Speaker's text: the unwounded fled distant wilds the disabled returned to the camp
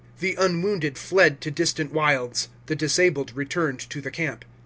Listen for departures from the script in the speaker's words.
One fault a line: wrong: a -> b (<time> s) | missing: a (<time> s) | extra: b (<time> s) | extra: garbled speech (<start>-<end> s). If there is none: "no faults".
extra: to (1.4 s)